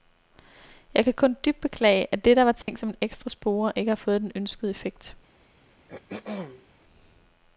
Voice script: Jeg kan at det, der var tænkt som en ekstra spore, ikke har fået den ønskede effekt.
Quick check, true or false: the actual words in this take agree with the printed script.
false